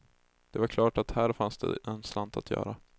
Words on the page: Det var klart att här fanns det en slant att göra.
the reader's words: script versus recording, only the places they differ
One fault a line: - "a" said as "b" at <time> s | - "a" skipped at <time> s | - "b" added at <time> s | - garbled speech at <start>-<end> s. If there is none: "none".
none